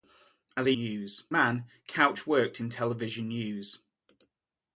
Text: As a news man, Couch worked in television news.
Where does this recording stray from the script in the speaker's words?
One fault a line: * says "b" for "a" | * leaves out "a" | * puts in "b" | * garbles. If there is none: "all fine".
all fine